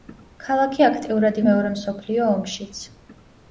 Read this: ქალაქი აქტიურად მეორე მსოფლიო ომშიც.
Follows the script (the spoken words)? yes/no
yes